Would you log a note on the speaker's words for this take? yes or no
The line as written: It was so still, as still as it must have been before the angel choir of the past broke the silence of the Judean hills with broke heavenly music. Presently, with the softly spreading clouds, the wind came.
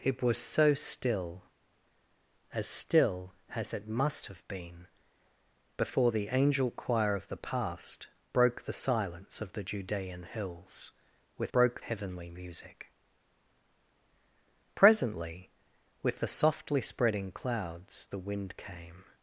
no